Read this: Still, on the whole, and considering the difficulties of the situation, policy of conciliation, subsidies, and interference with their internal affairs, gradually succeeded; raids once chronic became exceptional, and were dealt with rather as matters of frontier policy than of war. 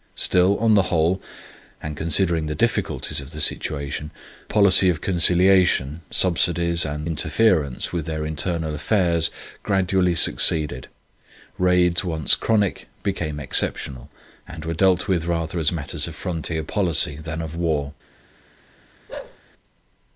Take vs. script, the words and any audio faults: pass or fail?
fail